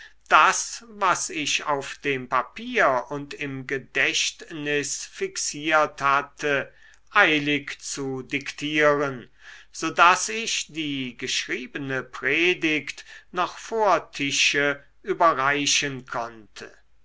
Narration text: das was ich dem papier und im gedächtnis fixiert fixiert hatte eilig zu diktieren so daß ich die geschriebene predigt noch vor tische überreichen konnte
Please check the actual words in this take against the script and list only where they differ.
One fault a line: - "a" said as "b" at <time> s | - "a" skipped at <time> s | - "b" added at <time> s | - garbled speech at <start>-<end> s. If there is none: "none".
- "auf" added at 1.6 s
- "fixiert" skipped at 6.0 s